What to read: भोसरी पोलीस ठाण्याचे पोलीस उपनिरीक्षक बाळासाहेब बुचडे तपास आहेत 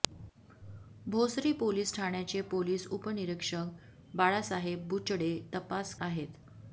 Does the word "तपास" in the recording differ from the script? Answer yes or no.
no